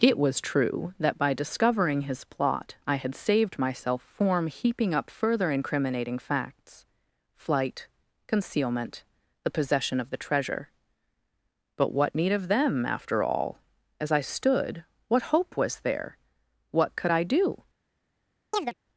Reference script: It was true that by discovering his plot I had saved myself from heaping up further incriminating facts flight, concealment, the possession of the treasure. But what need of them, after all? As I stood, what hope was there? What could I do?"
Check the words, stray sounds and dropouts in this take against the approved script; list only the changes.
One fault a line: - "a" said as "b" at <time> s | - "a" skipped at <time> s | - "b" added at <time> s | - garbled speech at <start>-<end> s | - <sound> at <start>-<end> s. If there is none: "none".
- "from" said as "form" at 4.0 s
- chirp at 18.5-18.7 s